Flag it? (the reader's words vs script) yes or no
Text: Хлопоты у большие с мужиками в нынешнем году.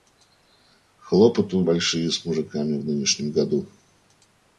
no